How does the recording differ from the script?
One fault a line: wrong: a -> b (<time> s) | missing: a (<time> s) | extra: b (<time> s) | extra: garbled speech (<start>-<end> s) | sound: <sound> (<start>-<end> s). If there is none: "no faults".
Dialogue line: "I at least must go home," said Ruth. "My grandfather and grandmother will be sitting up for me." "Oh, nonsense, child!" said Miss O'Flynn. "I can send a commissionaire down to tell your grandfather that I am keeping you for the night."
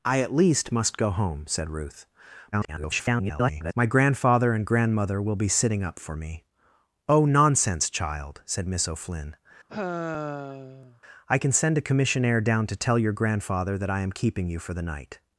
extra: garbled speech (2.5-3.7 s)
sound: sigh (9.7-11.0 s)